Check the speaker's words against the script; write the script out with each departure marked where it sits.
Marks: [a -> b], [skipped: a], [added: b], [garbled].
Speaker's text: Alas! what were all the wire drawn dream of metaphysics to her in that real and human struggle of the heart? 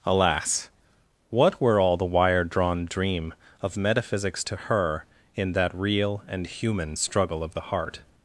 Alas! what were all the wire drawn dream of metaphysics to her in that real and human struggle of the heart?